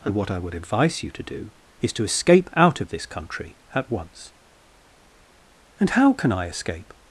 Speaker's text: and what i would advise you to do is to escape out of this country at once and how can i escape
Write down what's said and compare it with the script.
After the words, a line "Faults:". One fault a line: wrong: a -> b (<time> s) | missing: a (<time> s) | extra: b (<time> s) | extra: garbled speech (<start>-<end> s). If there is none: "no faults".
and what i would advise you to do is to escape out of this country at once and how can i escape
Faults:
no faults